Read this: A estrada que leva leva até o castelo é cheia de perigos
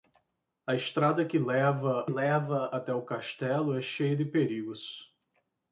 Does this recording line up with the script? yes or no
yes